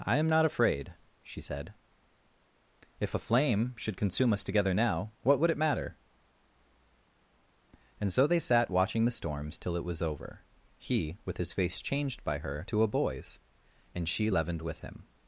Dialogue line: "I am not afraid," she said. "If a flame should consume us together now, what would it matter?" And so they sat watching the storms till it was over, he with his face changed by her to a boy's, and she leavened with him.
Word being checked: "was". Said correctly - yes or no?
yes